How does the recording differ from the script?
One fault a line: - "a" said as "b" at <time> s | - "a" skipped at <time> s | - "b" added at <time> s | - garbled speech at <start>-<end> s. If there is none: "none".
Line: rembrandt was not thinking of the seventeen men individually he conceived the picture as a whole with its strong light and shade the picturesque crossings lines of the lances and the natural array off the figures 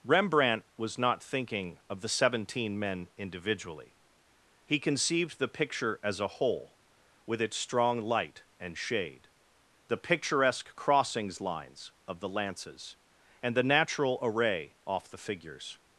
none